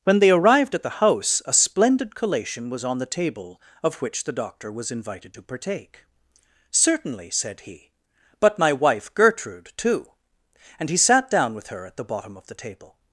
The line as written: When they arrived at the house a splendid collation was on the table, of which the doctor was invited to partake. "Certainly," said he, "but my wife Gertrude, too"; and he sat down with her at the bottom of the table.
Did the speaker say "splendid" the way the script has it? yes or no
yes